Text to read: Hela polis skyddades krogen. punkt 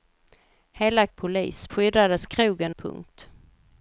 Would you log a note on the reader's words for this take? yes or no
no